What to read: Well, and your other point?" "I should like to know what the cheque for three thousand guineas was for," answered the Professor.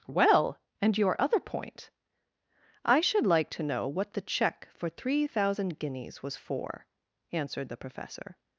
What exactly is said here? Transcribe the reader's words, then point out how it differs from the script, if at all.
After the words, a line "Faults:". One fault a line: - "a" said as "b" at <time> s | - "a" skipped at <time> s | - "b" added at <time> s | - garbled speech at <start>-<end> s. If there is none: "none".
Well, and your other point?" "I should like to know what the cheque for three thousand guineas was for," answered the Professor.
Faults:
none